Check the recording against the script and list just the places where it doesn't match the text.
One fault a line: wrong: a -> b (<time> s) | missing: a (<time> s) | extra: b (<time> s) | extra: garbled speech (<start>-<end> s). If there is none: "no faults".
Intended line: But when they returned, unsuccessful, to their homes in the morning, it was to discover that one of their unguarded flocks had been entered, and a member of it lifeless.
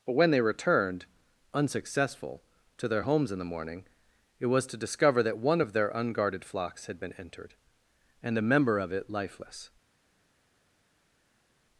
no faults